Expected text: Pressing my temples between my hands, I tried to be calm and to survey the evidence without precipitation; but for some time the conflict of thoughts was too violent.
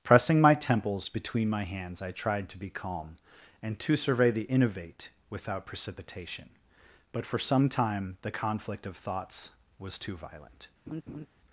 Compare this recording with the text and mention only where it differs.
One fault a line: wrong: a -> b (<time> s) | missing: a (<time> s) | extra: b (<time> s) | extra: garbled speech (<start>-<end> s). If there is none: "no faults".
wrong: evidence -> innovate (4.4 s)